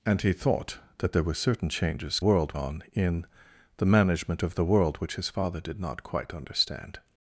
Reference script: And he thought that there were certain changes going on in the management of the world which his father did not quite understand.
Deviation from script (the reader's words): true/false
true